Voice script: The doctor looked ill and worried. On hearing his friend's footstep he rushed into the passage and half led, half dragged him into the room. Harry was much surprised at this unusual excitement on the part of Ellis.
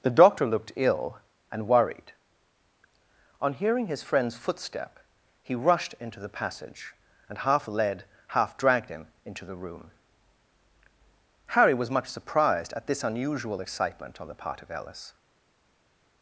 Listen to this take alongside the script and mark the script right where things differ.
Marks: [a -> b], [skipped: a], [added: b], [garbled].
The doctor looked ill and worried. On hearing his friend's footstep he rushed into the passage and half led, half dragged him into the room. Harry was much surprised at this unusual excitement on the part of Ellis.